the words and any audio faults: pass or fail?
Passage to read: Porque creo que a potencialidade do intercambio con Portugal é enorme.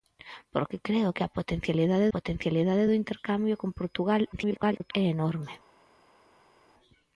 fail